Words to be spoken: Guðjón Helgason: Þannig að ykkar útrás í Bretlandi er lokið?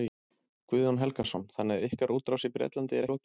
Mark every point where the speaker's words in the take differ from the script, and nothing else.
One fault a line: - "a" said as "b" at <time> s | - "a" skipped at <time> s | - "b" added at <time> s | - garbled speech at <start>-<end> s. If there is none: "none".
none